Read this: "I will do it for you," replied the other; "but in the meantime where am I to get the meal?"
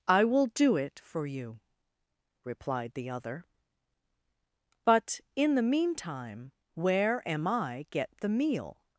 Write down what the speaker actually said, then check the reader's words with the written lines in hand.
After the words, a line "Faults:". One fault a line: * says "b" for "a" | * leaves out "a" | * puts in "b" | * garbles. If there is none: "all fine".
"I will do it for you," replied the other; "but in the meantime where am I get the meal?"
Faults:
* leaves out "to"